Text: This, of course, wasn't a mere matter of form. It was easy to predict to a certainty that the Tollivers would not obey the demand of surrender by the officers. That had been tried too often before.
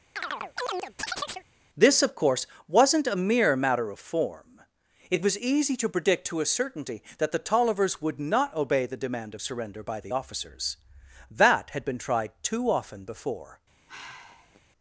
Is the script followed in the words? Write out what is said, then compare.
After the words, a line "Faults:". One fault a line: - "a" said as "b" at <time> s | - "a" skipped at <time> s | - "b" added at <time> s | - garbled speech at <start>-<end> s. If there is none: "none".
This, of course, wasn't a mere matter of form. It was easy to predict to a certainty that the Tollivers would not obey the demand of surrender by the officers. That had been tried too often before.
Faults:
none